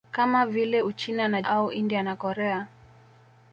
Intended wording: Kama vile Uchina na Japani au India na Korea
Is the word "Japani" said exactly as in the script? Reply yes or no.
no